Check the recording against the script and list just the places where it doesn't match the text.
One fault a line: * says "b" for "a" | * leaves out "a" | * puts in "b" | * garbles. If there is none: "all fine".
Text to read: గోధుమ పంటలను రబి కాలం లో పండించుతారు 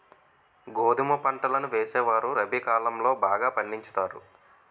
* puts in "వేసేవారు"
* puts in "బాగా"